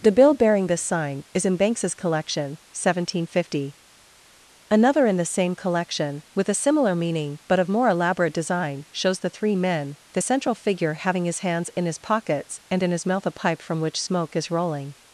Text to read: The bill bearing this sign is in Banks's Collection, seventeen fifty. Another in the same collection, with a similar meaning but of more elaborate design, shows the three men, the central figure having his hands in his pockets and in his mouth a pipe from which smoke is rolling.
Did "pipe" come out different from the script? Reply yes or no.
no